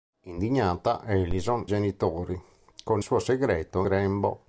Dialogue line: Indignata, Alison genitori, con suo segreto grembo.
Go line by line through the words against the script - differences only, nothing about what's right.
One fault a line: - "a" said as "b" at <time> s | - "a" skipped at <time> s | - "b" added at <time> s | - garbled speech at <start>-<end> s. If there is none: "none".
none